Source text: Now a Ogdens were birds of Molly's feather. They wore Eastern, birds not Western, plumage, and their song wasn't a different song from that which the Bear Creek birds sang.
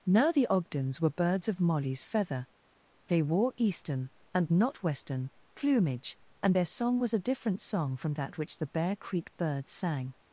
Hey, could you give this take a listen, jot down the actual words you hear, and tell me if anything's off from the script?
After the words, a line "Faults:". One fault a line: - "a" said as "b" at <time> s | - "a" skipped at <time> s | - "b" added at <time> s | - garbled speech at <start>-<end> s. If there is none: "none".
Now the Ogdens were birds of Molly's feather. They wore Eastern, and not Western, plumage, and their song was a different song from that which the Bear Creek birds sang.
Faults:
- "a" said as "the" at 0.3 s
- "birds" said as "and" at 4.3 s
- "wasn't" said as "was" at 7.0 s